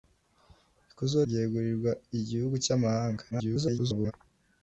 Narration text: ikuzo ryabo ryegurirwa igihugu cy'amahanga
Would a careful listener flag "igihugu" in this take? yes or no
no